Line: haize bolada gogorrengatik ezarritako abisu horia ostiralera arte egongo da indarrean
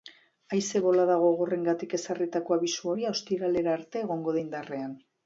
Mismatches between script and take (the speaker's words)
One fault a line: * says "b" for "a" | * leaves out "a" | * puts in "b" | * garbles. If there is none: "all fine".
all fine